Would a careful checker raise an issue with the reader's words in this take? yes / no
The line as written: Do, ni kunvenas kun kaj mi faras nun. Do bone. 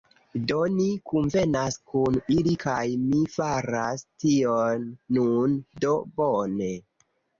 yes